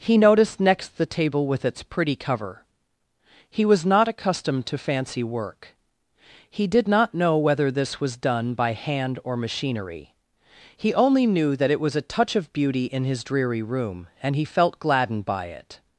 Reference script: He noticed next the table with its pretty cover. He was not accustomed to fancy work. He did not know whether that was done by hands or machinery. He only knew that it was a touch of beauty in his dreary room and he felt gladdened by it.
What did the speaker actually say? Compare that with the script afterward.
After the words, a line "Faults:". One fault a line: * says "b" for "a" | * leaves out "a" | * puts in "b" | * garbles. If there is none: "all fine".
He noticed next the table with its pretty cover. He was not accustomed to fancy work. He did not know whether this was done by hand or machinery. He only knew that it was a touch of beauty in his dreary room and he felt gladdened by it.
Faults:
* says "this" for "that"
* says "hand" for "hands"